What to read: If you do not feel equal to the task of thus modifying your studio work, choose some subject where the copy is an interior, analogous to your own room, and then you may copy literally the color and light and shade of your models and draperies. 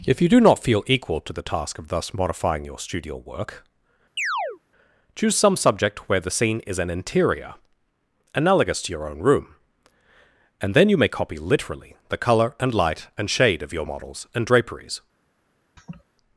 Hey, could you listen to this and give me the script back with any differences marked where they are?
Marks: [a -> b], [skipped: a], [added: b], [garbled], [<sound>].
If you do not feel equal to the task of thus modifying your studio work, [chirp] choose some subject where the [copy -> scene] is an interior, analogous to your own room, and then you may copy literally the color and light and shade of your models and draperies. [laugh]